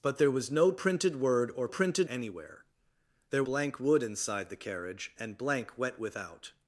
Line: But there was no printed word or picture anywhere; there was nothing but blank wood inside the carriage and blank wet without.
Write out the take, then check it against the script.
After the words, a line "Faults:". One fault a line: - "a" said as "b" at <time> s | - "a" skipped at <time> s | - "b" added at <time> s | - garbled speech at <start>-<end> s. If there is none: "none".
But there was no printed word or printed anywhere; there blank wood inside the carriage and blank wet without.
Faults:
- "picture" said as "printed" at 1.7 s
- "was nothing but" skipped at 3.4 s